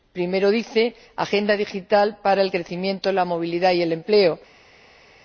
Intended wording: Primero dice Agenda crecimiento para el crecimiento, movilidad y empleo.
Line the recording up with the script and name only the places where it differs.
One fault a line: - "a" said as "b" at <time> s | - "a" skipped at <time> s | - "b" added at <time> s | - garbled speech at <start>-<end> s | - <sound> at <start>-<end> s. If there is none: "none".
- "crecimiento" said as "digital" at 1.6 s
- "la" added at 3.1 s
- "el" added at 3.8 s